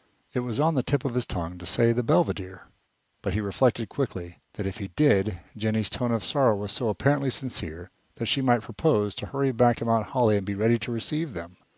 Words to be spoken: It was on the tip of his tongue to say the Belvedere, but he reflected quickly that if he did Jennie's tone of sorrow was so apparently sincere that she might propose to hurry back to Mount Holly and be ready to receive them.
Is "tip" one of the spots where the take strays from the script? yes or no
no